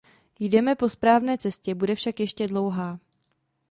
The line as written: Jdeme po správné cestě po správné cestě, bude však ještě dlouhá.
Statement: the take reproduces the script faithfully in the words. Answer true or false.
false